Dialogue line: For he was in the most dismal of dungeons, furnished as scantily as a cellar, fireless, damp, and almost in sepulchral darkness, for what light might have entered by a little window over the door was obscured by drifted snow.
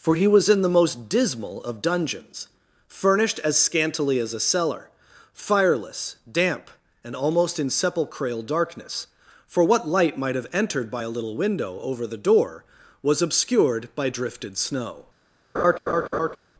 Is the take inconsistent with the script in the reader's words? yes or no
no